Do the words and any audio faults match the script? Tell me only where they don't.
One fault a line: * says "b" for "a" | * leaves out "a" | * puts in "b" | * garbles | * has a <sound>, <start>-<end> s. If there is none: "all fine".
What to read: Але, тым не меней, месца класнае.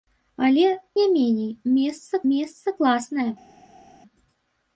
* leaves out "тым"
* puts in "месца"